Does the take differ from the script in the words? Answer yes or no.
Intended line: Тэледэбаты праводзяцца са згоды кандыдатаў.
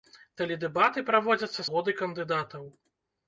yes